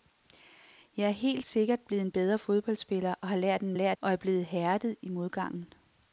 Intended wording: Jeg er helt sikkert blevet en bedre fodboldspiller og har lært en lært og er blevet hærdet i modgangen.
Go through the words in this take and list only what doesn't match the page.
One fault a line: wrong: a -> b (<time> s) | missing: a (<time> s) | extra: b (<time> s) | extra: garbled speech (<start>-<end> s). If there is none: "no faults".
no faults